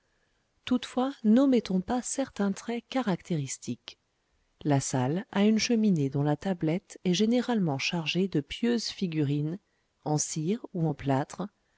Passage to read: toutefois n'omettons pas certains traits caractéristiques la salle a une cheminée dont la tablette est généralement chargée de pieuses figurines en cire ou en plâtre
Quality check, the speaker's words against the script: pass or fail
pass